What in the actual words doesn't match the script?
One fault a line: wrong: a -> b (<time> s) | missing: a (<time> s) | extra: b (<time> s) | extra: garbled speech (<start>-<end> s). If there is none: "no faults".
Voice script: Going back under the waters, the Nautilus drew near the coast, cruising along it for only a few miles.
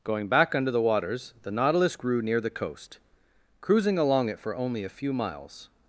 wrong: drew -> grew (1.9 s)